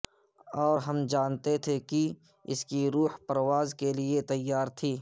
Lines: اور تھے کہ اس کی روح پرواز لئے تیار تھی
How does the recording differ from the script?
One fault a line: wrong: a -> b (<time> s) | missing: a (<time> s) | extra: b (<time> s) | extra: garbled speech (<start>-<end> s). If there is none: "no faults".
extra: ہم جانتے (0.8 s)
extra: کے (3.7 s)